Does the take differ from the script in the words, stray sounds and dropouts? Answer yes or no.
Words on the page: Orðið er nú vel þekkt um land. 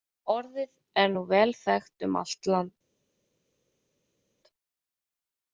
yes